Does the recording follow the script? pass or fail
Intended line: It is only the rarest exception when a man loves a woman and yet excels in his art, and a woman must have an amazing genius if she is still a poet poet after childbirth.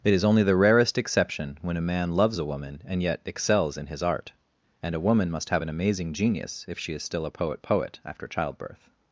pass